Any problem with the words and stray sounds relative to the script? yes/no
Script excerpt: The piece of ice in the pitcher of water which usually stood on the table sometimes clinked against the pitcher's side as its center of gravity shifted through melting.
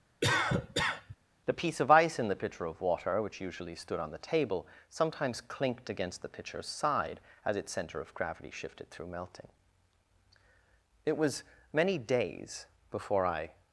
yes